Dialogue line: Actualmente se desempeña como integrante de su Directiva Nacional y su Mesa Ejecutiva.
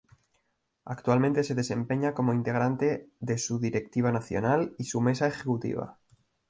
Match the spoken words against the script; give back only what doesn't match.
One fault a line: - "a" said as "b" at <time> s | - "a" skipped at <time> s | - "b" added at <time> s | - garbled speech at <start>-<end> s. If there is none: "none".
none